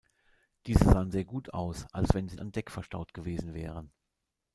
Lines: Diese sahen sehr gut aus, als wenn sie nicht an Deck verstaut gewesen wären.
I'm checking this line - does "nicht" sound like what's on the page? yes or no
no